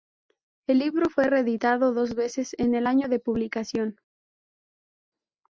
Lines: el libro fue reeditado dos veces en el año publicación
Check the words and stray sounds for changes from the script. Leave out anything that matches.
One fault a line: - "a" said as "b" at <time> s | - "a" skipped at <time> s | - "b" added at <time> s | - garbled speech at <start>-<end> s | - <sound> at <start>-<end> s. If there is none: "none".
- "de" added at 3.1 s